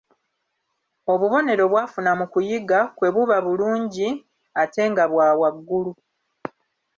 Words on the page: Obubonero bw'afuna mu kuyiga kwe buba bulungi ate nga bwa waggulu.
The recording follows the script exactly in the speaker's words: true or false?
true